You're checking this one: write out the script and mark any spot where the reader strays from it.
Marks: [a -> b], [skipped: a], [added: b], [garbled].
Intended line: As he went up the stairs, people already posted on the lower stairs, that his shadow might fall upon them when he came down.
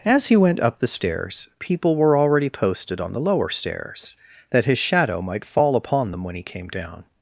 As he went up the stairs, people [added: were] already posted on the lower stairs, that his shadow might fall upon them when he came down.